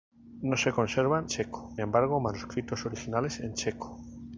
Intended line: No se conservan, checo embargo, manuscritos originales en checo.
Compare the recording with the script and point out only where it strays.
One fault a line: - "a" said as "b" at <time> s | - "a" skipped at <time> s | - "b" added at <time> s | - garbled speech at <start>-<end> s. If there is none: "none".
none